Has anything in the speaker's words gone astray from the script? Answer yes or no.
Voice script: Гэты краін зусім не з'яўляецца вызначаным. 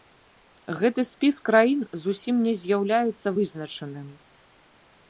yes